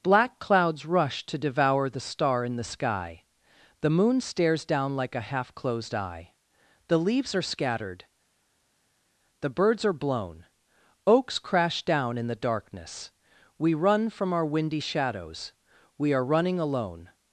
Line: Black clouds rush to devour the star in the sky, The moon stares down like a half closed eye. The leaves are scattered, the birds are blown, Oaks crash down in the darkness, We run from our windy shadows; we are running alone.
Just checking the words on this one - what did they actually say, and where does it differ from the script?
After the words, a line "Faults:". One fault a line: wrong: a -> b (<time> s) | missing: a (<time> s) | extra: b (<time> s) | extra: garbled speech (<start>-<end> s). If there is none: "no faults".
Black clouds rush to devour the star in the sky, The moon stares down like a half closed eye. The leaves are scattered, the birds are blown, Oaks crash down in the darkness, We run from our windy shadows; we are running alone.
Faults:
no faults